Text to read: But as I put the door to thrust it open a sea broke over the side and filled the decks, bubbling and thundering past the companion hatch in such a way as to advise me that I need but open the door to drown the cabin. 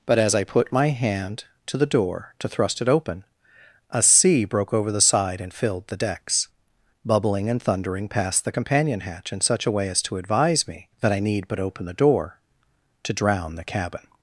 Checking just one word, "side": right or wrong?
right